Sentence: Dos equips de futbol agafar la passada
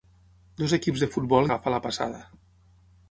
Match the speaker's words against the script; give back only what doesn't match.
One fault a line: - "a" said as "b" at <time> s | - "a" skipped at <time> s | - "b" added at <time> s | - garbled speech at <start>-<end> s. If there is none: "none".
none